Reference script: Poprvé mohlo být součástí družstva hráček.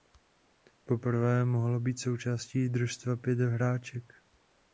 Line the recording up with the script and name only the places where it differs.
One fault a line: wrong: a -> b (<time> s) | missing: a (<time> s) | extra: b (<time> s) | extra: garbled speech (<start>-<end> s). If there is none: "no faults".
extra: pět (3.2 s)